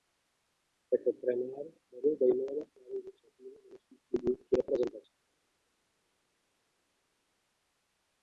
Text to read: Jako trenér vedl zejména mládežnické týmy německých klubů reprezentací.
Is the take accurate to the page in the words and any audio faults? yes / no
no